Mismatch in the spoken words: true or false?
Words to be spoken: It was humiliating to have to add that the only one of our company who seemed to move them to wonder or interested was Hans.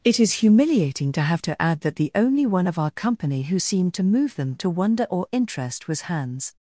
true